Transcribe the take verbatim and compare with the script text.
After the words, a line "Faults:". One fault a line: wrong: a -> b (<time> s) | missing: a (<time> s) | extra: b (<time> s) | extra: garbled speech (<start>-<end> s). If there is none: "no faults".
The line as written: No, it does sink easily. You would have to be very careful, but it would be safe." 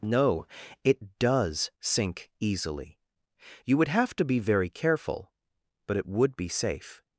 No, it does sink easily. You would have to be very careful, but it would be safe."
Faults:
no faults